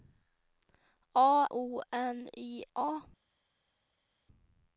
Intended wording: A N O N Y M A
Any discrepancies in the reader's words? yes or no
yes